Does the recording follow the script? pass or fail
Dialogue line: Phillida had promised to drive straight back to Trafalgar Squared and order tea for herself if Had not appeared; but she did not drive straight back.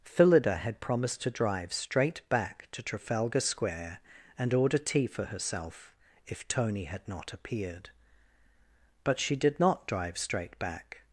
fail